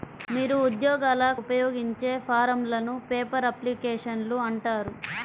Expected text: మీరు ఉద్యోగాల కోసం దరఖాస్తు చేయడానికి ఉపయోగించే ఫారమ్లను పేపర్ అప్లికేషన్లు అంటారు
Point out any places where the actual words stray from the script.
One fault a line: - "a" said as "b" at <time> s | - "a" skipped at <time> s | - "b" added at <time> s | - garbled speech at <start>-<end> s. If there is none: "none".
- "కోసం దరఖాస్తు చేయడానికి" skipped at 1.2 s